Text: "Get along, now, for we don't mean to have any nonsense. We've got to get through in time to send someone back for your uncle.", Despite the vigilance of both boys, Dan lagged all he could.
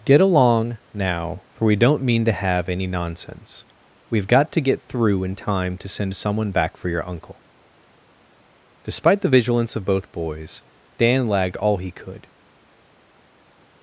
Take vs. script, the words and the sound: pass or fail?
pass